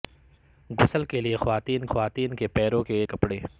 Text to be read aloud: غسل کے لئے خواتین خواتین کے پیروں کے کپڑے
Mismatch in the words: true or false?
false